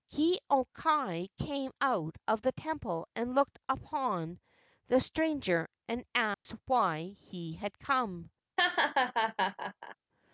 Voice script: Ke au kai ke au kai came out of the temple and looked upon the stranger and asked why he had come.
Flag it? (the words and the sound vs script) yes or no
yes